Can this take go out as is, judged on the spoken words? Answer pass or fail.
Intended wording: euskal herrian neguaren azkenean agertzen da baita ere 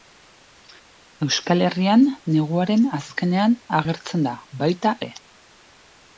pass